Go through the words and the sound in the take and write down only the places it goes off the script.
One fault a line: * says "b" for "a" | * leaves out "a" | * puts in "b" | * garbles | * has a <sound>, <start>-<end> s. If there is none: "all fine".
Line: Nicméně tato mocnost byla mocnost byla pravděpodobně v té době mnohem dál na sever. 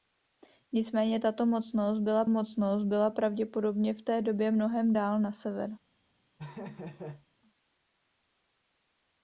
* has a laugh, 6.4-7.3 s